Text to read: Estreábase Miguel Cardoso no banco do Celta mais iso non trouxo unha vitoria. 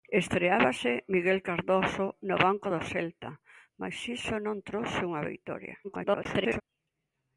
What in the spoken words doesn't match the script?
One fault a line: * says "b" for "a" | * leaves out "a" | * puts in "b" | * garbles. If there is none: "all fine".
* garbles